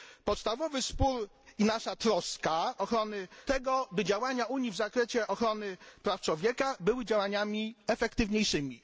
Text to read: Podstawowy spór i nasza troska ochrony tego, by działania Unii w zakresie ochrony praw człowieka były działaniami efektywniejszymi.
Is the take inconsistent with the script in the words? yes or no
no